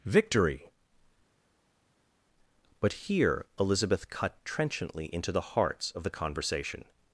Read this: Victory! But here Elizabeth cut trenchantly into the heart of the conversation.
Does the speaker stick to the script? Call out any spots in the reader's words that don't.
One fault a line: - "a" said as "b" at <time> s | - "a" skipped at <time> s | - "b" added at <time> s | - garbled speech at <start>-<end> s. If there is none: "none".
- "heart" said as "hearts" at 5.4 s